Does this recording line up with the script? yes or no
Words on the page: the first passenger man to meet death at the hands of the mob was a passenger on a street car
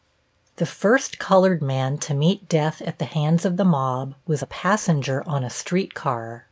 no